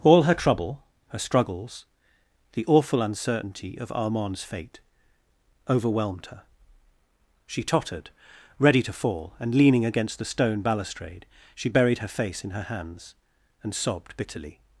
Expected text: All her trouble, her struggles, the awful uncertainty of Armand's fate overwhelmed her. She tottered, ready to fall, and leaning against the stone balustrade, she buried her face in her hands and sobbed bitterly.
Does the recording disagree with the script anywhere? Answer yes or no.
no